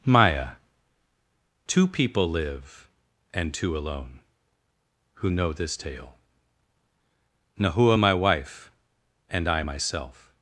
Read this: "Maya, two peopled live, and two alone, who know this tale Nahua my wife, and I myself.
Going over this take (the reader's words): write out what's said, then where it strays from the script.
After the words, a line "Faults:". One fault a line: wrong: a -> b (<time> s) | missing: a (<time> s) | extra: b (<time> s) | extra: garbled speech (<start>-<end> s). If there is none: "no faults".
"Maya, two people live, and two alone, who know this tale Nahua my wife, and I myself.
Faults:
wrong: peopled -> people (1.9 s)